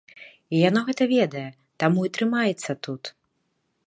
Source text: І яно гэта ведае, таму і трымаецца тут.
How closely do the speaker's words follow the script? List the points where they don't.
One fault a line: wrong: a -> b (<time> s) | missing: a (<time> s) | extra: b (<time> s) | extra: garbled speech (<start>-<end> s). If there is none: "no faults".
no faults